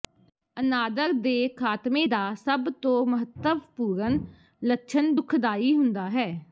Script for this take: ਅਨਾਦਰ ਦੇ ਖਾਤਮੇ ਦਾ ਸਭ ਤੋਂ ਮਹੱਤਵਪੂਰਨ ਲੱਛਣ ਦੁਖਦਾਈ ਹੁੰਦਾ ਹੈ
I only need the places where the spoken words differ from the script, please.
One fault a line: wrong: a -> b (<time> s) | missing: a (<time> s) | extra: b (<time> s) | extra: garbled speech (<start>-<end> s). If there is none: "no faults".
no faults